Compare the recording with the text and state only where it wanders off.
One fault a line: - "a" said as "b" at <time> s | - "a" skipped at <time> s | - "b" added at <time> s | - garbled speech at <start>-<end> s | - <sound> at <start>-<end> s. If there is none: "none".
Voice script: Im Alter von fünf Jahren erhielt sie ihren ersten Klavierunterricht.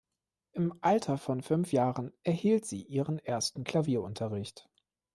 none